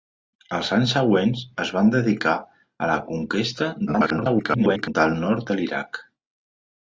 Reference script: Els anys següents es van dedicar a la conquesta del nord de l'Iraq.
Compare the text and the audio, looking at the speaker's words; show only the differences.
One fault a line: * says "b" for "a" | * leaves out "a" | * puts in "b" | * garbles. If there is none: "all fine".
* garbles